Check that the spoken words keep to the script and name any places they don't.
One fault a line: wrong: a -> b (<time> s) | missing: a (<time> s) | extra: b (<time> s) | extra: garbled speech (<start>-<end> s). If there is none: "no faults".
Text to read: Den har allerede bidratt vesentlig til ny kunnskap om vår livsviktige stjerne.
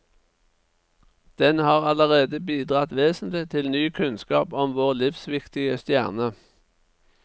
no faults